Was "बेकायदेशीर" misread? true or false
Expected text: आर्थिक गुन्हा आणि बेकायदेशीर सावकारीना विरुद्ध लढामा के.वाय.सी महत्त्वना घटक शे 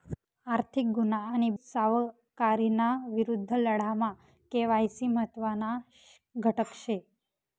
true